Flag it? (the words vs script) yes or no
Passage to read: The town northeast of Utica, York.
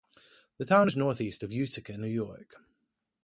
yes